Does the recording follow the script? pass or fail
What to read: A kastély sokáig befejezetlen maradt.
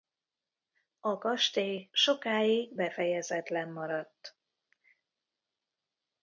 pass